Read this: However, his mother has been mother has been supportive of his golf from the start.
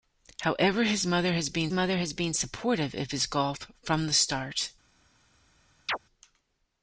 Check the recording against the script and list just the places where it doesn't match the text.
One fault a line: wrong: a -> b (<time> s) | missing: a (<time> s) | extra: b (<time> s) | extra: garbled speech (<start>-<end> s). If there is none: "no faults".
no faults